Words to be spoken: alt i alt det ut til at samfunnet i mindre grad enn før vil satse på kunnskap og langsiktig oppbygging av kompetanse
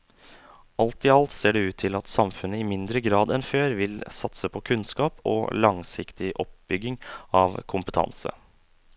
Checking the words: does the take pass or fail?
fail